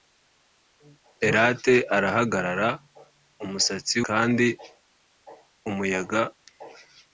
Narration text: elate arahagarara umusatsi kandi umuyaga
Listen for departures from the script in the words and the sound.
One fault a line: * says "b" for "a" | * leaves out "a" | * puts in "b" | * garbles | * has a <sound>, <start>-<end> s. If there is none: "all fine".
all fine